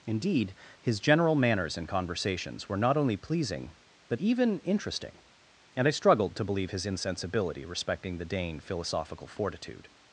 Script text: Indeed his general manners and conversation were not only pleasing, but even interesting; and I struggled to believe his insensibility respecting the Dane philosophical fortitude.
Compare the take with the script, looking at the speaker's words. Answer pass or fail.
fail